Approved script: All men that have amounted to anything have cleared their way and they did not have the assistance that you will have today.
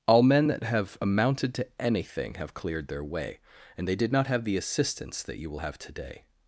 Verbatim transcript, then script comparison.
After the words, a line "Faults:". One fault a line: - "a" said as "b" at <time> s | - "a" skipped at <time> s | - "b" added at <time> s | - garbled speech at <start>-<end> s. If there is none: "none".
All men that have amounted to anything have cleared their way and they did not have the assistance that you will have today.
Faults:
none